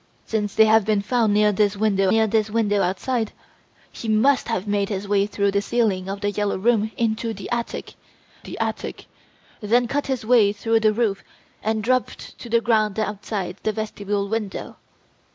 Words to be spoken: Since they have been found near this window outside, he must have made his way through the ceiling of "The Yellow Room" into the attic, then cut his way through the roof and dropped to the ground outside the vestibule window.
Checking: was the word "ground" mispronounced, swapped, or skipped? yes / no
no